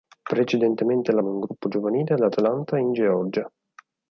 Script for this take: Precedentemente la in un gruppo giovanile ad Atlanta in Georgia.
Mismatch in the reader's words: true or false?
false